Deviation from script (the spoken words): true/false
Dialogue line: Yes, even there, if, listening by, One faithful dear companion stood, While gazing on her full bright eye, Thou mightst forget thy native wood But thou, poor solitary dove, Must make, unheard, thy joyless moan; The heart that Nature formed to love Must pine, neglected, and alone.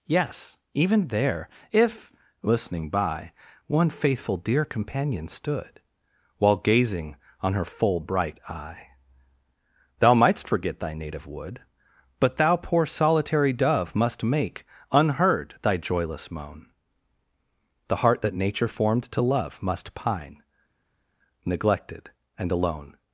false